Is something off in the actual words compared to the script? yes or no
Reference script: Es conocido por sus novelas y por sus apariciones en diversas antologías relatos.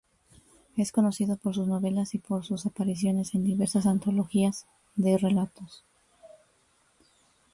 yes